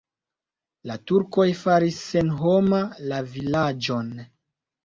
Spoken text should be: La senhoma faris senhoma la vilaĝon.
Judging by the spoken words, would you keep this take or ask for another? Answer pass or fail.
fail